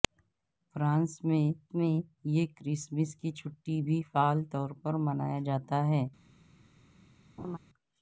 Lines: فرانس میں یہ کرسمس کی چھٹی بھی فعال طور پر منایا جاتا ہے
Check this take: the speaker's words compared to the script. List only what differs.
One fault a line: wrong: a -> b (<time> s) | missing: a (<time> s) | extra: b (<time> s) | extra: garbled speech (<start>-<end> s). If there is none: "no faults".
extra: میں (1.7 s)